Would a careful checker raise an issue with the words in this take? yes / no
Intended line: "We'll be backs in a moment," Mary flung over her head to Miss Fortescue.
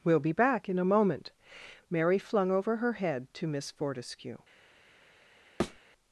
yes